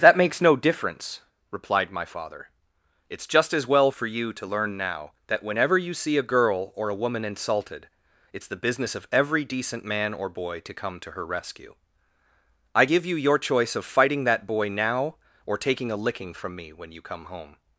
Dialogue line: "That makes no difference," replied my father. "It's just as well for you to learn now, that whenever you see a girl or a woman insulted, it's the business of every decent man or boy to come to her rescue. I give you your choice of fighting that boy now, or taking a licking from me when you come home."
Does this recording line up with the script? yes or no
yes